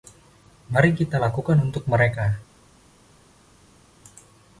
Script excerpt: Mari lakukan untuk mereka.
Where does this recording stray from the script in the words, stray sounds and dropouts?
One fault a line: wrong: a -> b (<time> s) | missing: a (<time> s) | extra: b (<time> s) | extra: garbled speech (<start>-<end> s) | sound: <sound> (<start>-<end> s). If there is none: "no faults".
extra: kita (1.0 s)